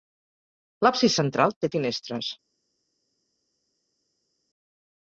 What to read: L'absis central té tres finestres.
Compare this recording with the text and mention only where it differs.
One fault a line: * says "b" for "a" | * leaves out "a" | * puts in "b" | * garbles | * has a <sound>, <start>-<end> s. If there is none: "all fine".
* leaves out "tres"